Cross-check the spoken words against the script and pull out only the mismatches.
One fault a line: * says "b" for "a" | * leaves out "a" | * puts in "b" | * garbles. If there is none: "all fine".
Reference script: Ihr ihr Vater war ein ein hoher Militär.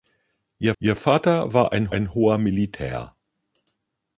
all fine